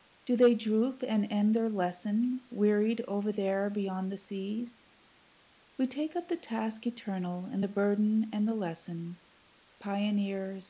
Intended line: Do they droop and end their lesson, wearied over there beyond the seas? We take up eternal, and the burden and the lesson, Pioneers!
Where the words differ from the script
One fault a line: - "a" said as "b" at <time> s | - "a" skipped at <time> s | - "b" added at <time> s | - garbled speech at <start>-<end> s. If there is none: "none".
- "the task" added at 6.3 s